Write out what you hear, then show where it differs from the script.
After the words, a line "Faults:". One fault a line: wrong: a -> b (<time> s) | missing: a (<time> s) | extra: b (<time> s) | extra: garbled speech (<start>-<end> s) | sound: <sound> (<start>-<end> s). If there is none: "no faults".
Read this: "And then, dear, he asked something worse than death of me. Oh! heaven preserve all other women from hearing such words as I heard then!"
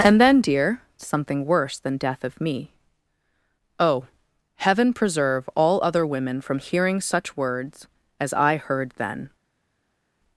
"And then, dear, something worse than death of me. Oh! heaven preserve all other women from hearing such words as I heard then!"
Faults:
missing: he asked (0.8 s)